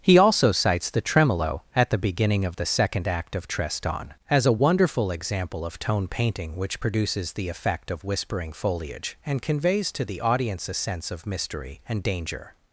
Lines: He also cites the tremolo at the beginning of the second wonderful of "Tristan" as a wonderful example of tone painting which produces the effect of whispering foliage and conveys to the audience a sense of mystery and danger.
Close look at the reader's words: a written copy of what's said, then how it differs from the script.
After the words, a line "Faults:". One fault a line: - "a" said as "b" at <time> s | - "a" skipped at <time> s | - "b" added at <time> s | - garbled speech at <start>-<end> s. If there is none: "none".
He also cites the tremolo at the beginning of the second act of "Tristan" as a wonderful example of tone painting which produces the effect of whispering foliage and conveys to the audience a sense of mystery and danger.
Faults:
- "wonderful" said as "act" at 3.1 s